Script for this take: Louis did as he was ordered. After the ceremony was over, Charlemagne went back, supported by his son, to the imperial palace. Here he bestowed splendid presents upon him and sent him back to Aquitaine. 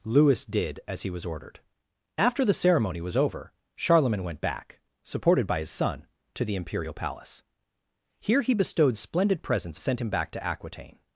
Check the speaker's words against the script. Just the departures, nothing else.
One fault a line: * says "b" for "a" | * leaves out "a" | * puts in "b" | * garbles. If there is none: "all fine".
* leaves out "upon him and"